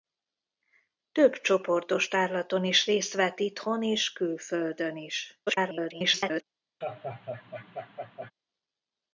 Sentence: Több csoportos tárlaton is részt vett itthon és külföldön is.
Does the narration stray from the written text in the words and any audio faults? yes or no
yes